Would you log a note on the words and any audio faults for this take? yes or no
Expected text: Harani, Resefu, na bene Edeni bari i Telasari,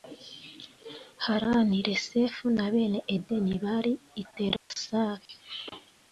yes